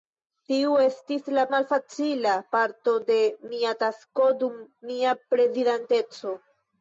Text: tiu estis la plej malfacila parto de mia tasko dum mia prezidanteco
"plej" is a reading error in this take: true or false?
true